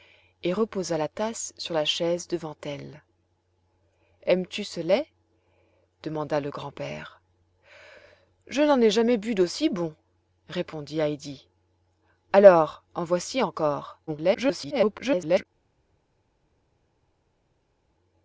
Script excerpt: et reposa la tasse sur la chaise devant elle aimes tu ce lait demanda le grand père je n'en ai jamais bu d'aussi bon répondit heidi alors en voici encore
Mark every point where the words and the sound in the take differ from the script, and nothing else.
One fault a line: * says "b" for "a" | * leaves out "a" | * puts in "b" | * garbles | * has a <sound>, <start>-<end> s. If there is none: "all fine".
* garbles